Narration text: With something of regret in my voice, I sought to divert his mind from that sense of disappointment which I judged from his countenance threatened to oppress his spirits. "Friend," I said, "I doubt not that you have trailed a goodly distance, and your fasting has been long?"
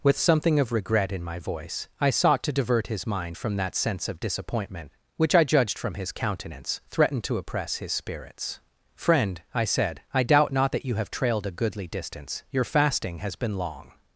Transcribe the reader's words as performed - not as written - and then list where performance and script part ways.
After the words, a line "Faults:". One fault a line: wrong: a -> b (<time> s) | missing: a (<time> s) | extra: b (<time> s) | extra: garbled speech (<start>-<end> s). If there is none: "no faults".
With something of regret in my voice, I sought to divert his mind from that sense of disappointment which I judged from his countenance threatened to oppress his spirits. "Friend," I said, "I doubt not that you have trailed a goodly distance, your fasting has been long?"
Faults:
missing: and (12.4 s)